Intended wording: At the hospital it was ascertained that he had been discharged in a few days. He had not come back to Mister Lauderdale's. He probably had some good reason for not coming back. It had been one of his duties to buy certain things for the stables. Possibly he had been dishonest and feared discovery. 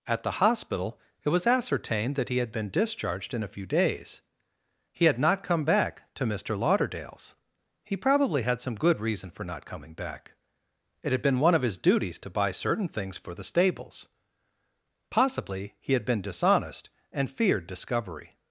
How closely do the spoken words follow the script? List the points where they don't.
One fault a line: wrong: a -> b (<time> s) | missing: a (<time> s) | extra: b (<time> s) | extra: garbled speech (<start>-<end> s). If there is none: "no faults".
no faults